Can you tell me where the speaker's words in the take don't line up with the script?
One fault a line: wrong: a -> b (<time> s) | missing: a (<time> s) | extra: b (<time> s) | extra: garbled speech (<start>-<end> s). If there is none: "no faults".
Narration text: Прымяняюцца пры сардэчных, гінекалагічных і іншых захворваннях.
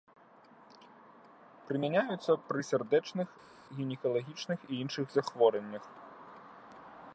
no faults